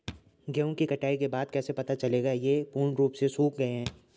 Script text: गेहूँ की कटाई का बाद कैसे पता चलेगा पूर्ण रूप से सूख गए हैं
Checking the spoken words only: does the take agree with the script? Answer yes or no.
no